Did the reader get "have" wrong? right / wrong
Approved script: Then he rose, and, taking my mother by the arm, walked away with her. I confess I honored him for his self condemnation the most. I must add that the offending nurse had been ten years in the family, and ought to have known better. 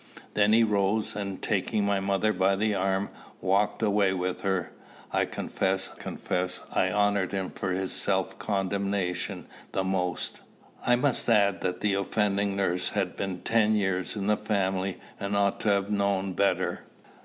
right